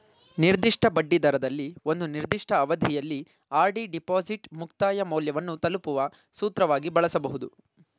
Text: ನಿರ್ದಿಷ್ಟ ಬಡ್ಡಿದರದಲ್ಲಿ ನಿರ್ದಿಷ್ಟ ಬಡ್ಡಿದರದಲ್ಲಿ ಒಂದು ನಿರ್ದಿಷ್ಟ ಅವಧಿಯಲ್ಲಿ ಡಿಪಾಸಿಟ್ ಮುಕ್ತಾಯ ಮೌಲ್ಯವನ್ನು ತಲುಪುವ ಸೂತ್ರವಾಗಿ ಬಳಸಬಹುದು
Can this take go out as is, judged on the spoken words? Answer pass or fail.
fail